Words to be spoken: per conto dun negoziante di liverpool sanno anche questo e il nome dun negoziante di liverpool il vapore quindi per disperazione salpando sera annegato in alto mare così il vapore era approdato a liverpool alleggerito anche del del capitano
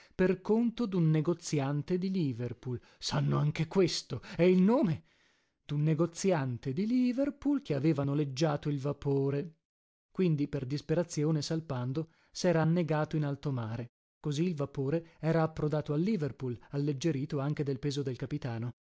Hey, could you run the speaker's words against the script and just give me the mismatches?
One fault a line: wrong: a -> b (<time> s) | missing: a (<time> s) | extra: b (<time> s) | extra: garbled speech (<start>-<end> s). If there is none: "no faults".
extra: che aveva noleggiato (7.6 s)
extra: peso (17.8 s)